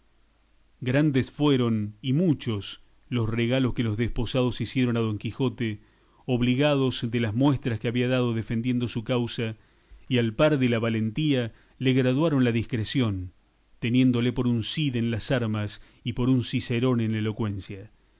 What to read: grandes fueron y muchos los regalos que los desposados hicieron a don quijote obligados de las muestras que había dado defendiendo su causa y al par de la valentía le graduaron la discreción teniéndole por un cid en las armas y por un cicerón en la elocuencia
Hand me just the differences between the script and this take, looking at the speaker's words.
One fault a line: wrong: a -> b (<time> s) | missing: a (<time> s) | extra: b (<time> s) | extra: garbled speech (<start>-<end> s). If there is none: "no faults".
no faults